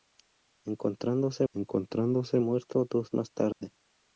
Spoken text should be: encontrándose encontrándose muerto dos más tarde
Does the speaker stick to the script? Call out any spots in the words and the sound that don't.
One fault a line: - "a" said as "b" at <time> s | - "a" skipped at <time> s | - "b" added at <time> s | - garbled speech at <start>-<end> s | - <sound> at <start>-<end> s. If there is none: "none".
- dropout at 3.5-3.6 s